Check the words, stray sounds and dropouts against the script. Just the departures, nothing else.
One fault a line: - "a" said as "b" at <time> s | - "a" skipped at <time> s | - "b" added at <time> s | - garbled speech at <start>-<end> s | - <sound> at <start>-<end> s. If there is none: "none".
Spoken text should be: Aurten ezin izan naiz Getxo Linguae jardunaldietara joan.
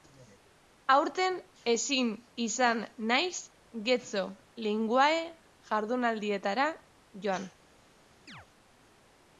- chirp at 8.3-8.5 s